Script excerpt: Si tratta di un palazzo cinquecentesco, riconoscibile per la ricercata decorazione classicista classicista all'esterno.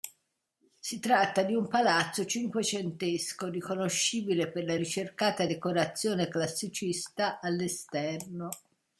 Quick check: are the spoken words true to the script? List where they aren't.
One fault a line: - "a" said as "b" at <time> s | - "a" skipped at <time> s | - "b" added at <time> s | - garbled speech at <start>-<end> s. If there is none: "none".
- "classicista" skipped at 7.4 s